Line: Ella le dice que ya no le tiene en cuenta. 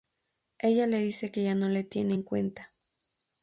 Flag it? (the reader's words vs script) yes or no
no